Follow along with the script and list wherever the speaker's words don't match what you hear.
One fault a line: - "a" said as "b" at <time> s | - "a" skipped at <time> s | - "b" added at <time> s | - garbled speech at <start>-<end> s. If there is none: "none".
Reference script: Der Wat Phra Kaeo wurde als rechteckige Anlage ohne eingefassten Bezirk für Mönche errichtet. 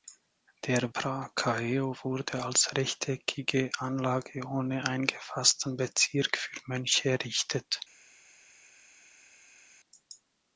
- "Wat" skipped at 0.9 s